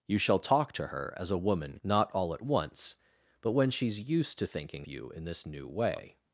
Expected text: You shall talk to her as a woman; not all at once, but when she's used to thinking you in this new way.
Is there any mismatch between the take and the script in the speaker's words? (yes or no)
no